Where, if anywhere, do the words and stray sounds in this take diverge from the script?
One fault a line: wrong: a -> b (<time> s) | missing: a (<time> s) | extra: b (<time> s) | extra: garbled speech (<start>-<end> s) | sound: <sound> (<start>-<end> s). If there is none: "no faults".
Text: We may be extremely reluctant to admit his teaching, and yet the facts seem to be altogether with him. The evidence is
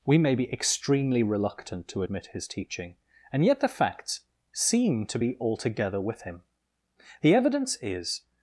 no faults